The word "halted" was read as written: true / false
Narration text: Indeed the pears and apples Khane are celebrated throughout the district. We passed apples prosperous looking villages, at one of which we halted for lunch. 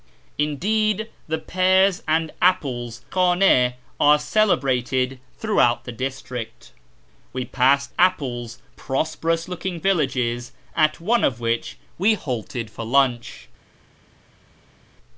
true